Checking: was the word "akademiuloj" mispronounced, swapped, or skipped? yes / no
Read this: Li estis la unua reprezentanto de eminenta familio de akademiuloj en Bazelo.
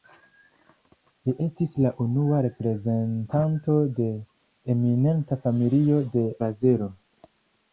yes